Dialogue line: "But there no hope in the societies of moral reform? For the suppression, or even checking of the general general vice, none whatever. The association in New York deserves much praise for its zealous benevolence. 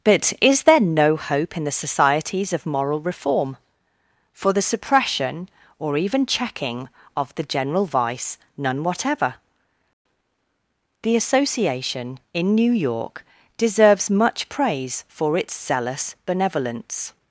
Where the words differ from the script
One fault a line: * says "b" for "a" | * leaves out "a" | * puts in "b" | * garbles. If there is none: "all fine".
* puts in "is"
* leaves out "general"